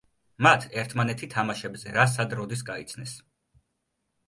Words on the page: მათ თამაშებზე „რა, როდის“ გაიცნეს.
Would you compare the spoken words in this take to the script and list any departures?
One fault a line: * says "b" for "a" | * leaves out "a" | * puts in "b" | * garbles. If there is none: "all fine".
* puts in "ერთმანეთი"
* puts in "სად"